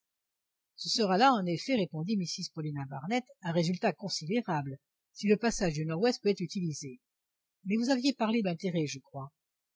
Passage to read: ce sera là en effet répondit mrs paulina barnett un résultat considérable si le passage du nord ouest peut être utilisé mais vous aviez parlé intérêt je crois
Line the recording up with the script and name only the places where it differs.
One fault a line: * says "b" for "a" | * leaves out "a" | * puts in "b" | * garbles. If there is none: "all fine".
all fine